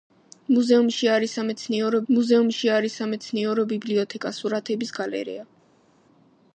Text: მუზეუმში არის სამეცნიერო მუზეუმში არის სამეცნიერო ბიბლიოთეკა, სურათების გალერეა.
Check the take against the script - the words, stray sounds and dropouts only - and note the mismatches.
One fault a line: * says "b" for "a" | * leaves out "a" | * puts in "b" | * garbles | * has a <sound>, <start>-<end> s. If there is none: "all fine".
all fine